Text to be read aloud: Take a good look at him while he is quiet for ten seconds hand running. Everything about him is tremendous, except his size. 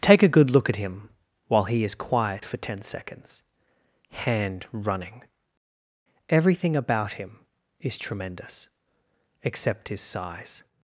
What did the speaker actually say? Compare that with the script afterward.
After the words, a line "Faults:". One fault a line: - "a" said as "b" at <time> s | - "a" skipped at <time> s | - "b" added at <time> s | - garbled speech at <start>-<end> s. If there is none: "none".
Take a good look at him while he is quiet for ten seconds hand running. Everything about him is tremendous, except his size.
Faults:
none